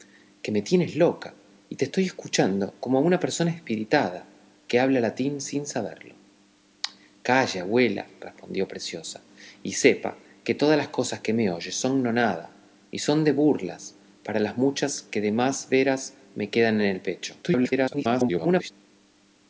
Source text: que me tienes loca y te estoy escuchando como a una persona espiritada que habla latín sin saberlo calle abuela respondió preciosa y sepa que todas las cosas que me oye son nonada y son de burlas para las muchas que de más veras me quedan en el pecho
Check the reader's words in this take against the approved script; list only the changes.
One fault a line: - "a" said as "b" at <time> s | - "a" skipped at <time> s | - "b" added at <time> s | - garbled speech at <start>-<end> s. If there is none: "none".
- garbled speech at 17.4-18.7 s